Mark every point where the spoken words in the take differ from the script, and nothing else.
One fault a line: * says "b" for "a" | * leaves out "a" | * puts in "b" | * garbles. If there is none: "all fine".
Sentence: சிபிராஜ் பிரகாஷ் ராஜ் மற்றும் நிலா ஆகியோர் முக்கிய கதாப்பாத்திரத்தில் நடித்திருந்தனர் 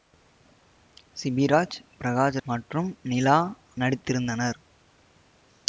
* leaves out "ராஜ்"
* leaves out "ஆகியோர் முக்கிய கதாப்பாத்திரத்தில்"